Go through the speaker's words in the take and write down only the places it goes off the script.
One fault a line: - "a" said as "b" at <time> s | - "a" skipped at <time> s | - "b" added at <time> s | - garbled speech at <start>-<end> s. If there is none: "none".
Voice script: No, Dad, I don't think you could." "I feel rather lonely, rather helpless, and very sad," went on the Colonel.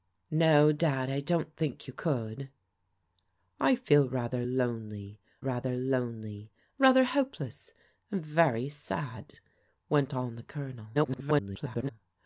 - "lonely rather" added at 5.7 s
- garbled speech at 10.9-11.9 s